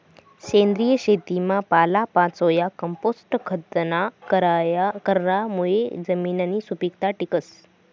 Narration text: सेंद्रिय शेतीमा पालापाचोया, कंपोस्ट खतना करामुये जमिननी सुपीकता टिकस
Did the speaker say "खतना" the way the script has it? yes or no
yes